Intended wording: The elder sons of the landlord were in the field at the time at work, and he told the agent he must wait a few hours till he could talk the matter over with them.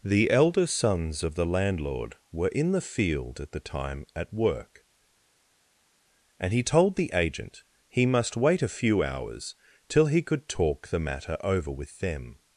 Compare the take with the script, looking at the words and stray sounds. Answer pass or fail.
pass